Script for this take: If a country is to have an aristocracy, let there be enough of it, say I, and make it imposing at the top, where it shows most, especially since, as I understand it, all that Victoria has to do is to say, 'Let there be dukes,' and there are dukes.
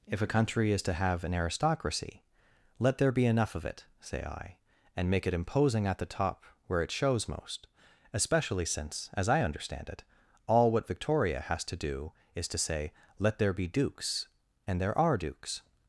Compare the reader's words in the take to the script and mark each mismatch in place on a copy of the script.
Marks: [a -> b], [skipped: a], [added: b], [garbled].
If a country is to have an aristocracy, let there be enough of it, say I, and make it imposing at the top, where it shows most, especially since, as I understand it, all [that -> what] Victoria has to do is to say, 'Let there be dukes,' and there are dukes.